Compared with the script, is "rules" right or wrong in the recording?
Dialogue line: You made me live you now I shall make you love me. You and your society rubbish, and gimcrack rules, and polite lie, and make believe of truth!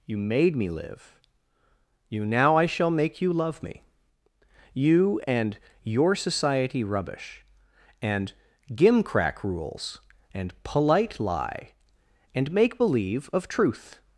right